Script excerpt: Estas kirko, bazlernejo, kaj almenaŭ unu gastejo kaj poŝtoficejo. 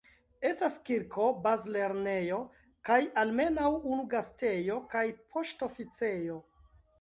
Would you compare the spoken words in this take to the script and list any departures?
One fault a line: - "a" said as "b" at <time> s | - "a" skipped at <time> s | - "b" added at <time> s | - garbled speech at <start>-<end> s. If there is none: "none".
none